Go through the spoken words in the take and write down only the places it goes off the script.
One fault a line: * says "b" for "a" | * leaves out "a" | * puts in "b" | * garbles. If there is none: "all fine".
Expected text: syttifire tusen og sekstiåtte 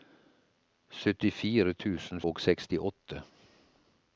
all fine